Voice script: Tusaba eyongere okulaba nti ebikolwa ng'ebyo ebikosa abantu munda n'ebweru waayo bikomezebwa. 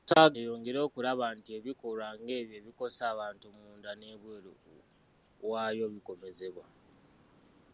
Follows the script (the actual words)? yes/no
yes